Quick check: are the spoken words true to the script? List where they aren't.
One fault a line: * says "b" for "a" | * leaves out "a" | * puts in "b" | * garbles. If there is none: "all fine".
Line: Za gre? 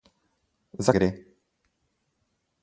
all fine